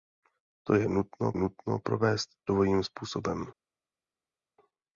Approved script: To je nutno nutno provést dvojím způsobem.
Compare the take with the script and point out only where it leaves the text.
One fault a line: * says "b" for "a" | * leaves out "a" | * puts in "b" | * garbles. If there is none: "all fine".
all fine